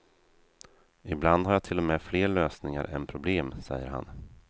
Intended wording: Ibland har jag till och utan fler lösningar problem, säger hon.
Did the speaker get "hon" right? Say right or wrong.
wrong